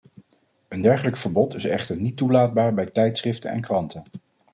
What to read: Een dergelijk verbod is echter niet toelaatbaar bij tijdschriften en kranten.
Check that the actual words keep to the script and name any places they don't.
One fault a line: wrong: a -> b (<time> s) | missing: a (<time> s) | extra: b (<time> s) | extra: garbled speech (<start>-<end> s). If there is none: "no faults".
no faults